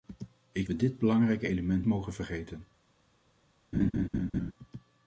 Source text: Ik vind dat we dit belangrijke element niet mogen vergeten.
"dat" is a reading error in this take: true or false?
true